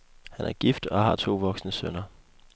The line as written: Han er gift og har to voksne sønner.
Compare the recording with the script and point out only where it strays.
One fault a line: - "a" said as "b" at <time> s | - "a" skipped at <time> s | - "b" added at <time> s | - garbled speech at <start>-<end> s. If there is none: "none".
none